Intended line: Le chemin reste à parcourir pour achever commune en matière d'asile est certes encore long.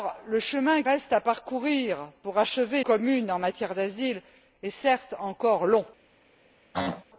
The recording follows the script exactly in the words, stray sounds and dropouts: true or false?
false